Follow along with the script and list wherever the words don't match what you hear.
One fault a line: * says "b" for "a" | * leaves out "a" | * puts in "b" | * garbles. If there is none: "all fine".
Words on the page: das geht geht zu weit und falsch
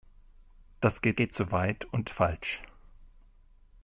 all fine